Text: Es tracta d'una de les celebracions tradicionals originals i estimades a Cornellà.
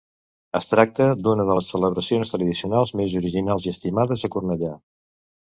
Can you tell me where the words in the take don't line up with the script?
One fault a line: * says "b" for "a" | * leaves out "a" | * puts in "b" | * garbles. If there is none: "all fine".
* puts in "més"